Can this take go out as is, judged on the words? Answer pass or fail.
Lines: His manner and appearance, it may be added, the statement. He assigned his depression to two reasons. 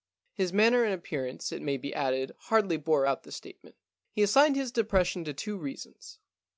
fail